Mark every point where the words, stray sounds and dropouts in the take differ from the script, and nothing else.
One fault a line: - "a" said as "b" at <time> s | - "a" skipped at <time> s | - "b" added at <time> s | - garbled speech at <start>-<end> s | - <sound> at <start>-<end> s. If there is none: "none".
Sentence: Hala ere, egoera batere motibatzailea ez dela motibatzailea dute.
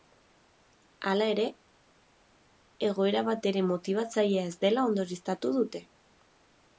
- "motibatzailea" said as "ondorioztatu" at 4.9 s